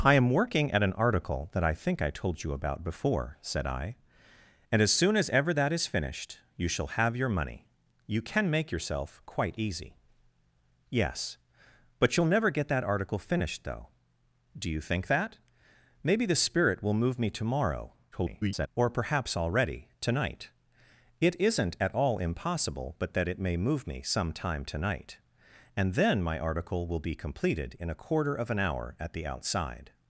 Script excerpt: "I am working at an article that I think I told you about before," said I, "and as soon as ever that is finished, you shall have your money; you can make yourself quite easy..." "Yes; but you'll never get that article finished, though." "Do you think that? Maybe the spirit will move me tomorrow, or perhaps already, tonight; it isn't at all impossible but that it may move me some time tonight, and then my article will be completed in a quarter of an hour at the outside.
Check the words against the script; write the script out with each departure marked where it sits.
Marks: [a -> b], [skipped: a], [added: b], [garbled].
"I am working at an article that I think I told you about before," said I, "and as soon as ever that is finished, you shall have your money; you can make yourself quite easy..." "Yes; but you'll never get that article finished, though." "Do you think that? Maybe the spirit will move me tomorrow, [garbled] or perhaps already, tonight; it isn't at all impossible but that it may move me some time tonight, and then my article will be completed in a quarter of an hour at the outside.